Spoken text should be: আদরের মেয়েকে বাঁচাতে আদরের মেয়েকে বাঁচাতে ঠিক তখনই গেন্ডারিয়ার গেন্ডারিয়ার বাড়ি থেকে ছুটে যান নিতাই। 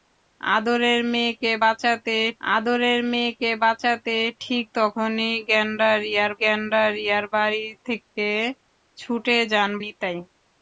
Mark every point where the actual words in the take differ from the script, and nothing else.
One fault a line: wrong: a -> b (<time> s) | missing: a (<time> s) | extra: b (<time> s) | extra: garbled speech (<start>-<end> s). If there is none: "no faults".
no faults